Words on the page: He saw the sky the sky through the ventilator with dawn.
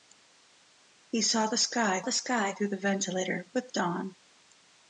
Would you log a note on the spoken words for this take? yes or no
no